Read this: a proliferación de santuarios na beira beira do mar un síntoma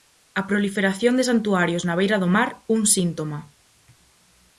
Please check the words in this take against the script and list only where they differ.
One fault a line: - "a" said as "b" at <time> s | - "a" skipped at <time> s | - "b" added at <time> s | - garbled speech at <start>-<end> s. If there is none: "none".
- "beira" skipped at 2.2 s